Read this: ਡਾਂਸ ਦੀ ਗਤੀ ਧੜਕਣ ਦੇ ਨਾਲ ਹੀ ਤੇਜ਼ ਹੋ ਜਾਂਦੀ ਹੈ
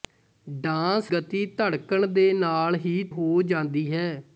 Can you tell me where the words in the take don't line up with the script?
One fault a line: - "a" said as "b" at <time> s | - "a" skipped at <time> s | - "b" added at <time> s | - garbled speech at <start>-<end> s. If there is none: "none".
- "ਦੀ" skipped at 1.1 s
- "ਤੇਜ਼" skipped at 3.0 s